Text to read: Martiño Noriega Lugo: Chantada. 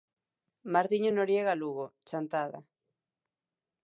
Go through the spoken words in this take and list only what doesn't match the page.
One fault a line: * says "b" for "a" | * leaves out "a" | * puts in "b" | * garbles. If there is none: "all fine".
all fine